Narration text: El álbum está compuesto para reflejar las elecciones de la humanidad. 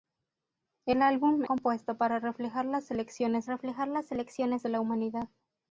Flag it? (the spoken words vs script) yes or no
yes